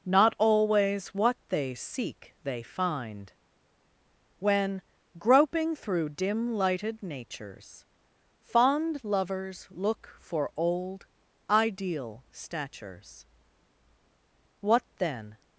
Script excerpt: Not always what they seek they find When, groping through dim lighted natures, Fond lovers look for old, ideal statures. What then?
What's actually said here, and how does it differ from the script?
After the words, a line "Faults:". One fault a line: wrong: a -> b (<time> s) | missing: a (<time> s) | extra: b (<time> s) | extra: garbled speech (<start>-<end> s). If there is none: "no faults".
Not always what they seek they find When, groping through dim lighted natures, Fond lovers look for old, ideal statures. What then?
Faults:
no faults